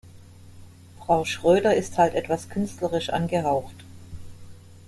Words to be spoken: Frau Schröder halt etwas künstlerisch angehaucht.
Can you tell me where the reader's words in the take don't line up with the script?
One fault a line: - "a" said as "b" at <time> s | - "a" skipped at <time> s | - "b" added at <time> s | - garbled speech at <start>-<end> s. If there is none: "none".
- "ist" added at 1.8 s